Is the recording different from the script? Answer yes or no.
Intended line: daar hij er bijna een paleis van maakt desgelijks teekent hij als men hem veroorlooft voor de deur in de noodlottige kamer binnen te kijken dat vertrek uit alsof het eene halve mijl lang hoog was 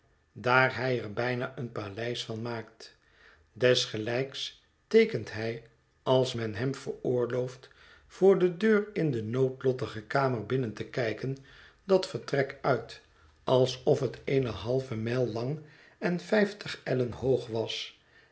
yes